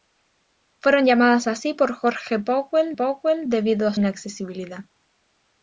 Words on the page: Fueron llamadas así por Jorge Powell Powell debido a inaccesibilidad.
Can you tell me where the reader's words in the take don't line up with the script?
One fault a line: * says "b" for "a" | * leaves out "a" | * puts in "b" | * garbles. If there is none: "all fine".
all fine